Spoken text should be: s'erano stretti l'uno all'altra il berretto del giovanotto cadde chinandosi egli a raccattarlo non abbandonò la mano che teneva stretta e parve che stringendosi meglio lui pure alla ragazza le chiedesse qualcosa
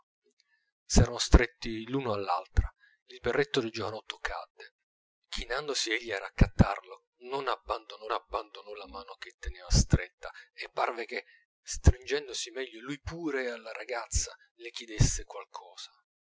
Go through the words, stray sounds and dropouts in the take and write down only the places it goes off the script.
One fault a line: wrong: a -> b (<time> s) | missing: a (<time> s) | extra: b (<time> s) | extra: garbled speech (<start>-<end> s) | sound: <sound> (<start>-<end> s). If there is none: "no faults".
extra: abbandonò (8.1 s)